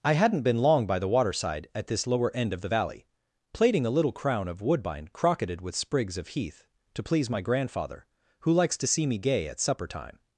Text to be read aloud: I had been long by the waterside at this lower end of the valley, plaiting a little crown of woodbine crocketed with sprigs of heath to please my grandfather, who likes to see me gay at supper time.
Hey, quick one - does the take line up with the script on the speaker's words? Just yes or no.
no